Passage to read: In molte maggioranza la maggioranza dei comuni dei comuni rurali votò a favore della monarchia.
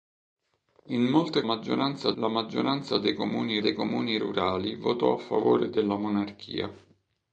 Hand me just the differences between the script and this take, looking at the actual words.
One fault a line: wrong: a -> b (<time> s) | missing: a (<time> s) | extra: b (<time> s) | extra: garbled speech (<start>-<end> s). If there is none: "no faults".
no faults